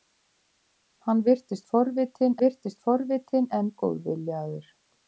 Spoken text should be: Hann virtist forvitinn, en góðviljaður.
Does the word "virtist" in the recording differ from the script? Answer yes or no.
no